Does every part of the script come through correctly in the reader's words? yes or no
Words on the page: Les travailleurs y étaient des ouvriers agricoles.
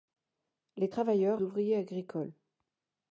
no